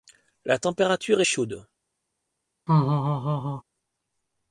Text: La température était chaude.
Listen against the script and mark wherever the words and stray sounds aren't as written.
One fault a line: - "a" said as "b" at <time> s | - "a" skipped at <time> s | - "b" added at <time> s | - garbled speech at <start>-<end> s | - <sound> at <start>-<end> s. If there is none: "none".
- "était" skipped at 1.2 s
- laugh at 2.7-3.6 s